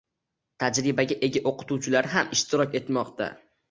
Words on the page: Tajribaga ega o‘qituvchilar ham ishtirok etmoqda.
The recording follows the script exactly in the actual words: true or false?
true